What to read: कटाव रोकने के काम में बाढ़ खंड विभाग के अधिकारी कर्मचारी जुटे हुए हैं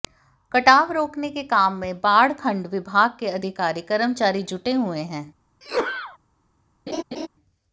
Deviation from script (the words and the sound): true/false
true